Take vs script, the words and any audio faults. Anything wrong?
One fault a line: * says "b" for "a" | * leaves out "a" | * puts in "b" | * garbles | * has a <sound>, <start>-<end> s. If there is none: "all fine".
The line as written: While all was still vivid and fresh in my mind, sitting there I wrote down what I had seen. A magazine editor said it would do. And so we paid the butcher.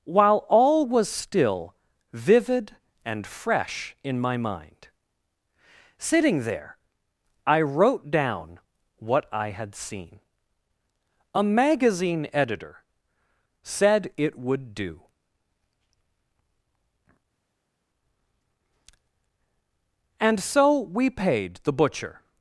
all fine